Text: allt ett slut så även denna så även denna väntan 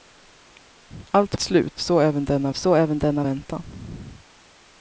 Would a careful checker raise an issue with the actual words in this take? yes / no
no